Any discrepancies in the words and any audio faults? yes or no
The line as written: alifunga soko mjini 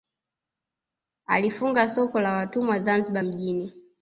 yes